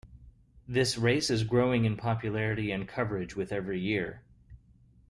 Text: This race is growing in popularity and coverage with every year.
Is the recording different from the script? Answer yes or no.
no